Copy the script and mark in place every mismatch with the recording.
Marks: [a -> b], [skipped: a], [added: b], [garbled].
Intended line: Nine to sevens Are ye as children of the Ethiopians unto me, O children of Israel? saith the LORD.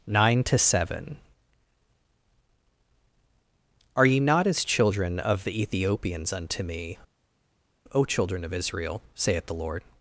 Nine to [sevens -> seven] Are ye [added: not] as children of the Ethiopians unto me, O children of Israel? saith the LORD.